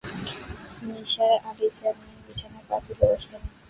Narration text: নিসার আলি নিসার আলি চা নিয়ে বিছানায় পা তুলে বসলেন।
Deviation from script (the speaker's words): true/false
true